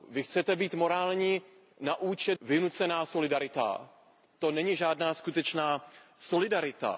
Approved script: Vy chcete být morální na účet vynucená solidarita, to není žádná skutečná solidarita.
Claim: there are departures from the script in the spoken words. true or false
false